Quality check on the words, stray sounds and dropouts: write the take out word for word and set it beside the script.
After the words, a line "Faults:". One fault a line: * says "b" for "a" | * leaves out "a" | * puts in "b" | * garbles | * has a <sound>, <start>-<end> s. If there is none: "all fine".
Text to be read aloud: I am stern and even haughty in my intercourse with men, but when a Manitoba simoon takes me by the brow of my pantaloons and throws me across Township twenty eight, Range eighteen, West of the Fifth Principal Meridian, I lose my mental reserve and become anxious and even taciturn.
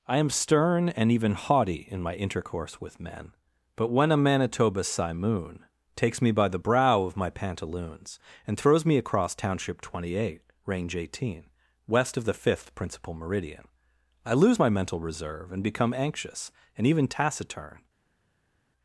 I am stern and even haughty in my intercourse with men, but when a Manitoba simoon takes me by the brow of my pantaloons and throws me across Township twenty eight, Range eighteen, West of the Fifth Principal Meridian, I lose my mental reserve and become anxious and even taciturn.
Faults:
all fine